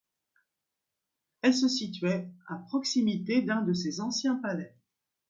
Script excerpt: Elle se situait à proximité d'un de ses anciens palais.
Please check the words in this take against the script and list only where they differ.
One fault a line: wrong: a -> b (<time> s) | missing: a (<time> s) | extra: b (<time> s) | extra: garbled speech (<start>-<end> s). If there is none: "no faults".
no faults